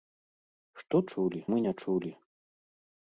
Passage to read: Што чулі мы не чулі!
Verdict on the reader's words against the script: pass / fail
pass